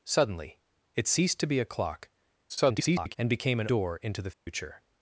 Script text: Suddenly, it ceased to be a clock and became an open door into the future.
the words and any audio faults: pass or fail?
fail